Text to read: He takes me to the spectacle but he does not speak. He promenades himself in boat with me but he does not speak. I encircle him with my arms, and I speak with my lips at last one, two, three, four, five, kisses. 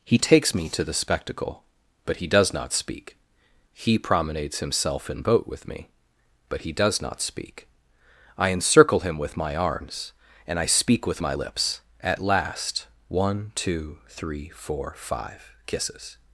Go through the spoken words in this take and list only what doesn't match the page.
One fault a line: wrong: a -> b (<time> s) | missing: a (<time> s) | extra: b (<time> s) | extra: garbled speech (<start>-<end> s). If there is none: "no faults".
no faults